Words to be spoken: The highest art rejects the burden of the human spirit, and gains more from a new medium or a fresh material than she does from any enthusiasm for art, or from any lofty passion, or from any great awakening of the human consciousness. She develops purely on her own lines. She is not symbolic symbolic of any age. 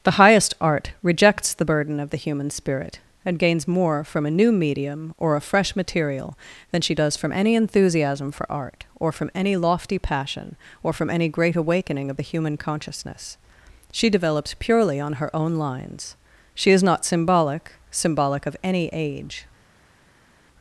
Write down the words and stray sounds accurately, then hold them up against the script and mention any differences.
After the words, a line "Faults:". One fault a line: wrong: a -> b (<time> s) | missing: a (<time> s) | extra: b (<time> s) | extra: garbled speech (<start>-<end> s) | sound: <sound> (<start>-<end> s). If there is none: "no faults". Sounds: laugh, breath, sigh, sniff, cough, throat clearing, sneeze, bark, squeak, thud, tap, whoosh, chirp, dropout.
The highest art rejects the burden of the human spirit, and gains more from a new medium or a fresh material than she does from any enthusiasm for art, or from any lofty passion, or from any great awakening of the human consciousness. She develops purely on her own lines. She is not symbolic symbolic of any age.
Faults:
no faults